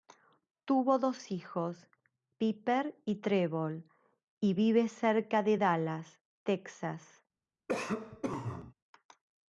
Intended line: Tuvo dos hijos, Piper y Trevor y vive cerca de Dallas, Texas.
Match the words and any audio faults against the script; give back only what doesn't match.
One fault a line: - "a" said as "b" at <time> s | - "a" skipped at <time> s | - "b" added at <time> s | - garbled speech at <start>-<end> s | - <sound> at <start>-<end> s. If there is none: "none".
- cough at 7.7-8.7 s